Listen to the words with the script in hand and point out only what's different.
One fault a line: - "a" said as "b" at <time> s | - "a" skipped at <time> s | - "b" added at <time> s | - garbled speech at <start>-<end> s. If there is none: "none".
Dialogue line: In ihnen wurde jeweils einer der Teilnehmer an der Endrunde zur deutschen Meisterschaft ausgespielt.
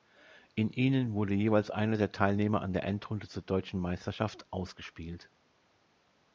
none